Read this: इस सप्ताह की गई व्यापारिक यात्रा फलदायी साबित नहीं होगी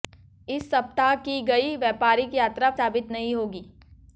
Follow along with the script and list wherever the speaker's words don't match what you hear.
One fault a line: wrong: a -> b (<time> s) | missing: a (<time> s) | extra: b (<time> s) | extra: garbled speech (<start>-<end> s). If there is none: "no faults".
missing: फलदायी (2.7 s)